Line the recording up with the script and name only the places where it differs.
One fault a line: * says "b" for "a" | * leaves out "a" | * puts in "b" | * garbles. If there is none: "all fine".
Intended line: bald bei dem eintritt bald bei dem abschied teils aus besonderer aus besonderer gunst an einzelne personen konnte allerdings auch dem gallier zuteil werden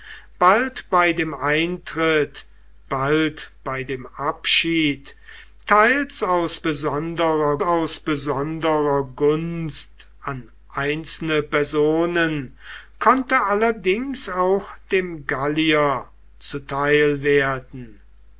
all fine